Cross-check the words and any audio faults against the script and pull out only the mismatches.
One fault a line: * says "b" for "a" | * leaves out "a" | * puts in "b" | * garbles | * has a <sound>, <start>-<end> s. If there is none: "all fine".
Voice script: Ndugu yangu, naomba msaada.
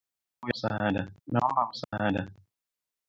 * says "msaada" for "yangu"
* has a dropout, 1.8-1.9 s